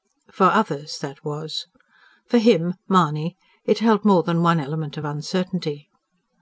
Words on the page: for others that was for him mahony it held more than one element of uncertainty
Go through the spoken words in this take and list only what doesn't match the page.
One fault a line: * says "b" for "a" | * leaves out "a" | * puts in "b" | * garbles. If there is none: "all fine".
all fine